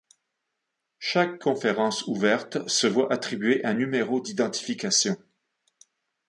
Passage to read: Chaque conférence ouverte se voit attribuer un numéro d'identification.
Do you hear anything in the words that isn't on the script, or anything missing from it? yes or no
no